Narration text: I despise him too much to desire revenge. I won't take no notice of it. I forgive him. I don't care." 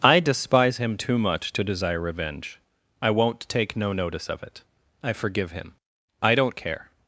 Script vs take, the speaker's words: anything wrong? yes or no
no